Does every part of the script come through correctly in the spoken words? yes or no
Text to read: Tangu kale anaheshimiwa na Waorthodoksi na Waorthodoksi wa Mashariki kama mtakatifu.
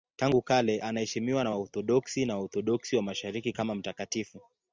yes